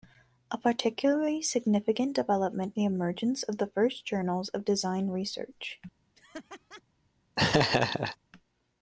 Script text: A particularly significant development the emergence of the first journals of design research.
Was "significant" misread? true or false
false